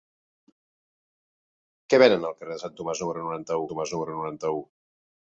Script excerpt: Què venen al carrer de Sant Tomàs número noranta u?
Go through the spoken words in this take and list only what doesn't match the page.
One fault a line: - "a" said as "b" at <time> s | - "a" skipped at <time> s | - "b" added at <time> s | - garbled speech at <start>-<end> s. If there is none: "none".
- "Tomàs número noranta" added at 3.7 s